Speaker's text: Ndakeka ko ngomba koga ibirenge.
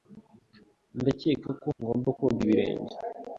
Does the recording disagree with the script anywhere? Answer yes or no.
no